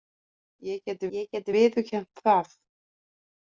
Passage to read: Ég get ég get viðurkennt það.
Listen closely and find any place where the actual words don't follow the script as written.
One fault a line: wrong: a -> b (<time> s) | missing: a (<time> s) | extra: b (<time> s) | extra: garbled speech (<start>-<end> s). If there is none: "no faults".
no faults